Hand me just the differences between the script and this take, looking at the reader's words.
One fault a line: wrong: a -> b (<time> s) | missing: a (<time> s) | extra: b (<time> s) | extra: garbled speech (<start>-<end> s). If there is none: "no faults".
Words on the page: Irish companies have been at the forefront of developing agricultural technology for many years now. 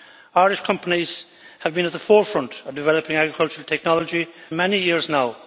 missing: for (4.3 s)